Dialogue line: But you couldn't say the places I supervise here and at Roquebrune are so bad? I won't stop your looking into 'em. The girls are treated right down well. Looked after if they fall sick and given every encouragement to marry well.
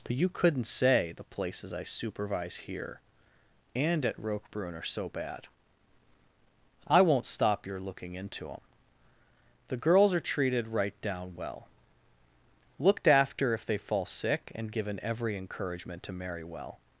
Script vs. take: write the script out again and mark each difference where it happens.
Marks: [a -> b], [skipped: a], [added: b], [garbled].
But you couldn't say the places I supervise here and at Roquebrune are so bad? I won't stop your looking into 'em. The girls are treated right down well. Looked after if they fall sick and given every encouragement to marry well.